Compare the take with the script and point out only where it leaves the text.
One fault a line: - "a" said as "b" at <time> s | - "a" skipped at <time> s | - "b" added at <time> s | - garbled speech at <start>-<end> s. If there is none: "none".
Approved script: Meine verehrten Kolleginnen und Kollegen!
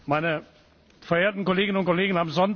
none